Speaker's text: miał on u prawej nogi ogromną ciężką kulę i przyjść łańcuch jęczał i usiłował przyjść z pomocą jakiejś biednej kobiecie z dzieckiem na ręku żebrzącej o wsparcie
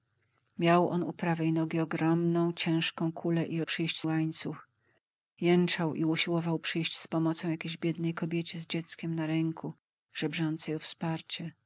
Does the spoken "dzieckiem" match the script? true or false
true